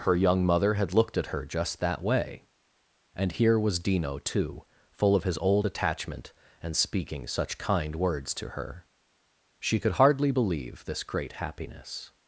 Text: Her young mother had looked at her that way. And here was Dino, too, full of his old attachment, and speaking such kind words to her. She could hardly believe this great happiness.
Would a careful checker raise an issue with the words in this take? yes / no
yes